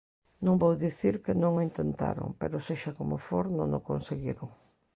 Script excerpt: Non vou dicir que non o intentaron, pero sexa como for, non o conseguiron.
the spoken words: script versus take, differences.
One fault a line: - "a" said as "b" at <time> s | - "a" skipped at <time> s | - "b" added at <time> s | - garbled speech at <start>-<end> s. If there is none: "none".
none